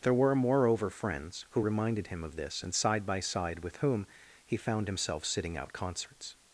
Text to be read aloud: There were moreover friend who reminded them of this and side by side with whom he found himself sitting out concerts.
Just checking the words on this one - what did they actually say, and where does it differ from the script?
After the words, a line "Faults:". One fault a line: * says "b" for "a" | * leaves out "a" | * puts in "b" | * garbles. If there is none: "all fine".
There were moreover friends who reminded him of this and side by side with whom he found himself sitting out concerts.
Faults:
* says "friends" for "friend"
* says "him" for "them"